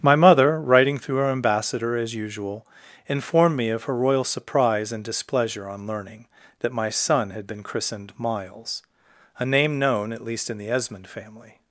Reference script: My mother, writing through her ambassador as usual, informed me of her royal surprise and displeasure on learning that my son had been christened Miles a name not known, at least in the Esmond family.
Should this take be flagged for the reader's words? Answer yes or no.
yes